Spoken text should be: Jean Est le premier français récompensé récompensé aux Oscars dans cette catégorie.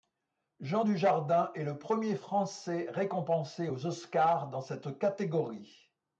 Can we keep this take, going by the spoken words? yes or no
no